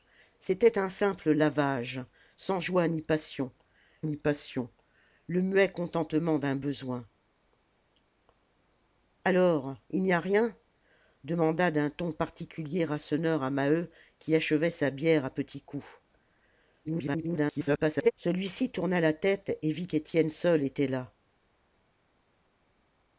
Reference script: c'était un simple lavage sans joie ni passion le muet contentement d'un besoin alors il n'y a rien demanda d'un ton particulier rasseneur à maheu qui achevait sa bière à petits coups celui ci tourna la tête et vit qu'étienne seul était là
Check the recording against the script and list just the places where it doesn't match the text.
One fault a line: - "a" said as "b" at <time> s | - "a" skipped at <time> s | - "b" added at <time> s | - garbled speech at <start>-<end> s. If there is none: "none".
- "ni passion" added at 4.0 s
- garbled speech at 16.8-18.1 s